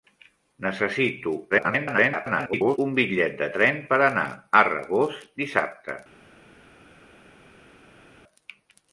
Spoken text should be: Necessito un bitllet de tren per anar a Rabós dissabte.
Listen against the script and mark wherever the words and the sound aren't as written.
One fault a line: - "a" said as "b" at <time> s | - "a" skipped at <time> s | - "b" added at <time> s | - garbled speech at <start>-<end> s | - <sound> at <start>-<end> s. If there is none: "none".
- garbled speech at 1.5-2.8 s